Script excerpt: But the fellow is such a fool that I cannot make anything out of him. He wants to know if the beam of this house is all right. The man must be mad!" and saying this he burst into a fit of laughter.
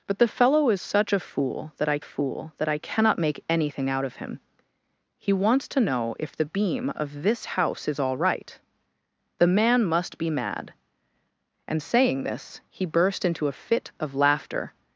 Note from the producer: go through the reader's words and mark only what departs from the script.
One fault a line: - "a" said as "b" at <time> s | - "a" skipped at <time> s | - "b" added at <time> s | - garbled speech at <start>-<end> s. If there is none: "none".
- "fool that I" added at 2.0 s